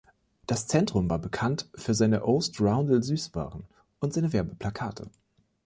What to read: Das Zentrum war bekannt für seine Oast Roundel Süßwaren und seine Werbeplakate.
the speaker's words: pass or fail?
pass